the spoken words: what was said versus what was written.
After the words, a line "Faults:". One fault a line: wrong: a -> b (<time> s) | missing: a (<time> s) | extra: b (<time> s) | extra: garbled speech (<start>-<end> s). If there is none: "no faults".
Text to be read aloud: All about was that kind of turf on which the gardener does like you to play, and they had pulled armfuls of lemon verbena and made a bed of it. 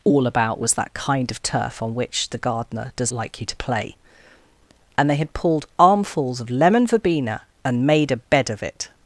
All about was that kind of turf on which the gardener does like you to play, and they had pulled armfuls of lemon verbena and made a bed of it.
Faults:
no faults